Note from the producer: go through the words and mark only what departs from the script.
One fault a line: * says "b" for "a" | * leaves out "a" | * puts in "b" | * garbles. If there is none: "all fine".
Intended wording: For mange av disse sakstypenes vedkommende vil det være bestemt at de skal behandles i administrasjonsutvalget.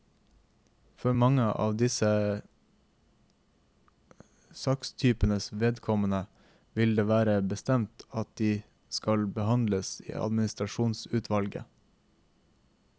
all fine